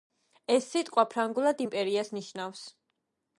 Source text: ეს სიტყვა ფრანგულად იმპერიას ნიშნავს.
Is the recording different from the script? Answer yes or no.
no